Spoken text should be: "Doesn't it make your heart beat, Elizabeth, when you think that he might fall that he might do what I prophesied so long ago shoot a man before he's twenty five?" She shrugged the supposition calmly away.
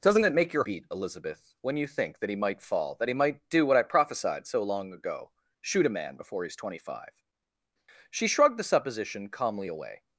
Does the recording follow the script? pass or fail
fail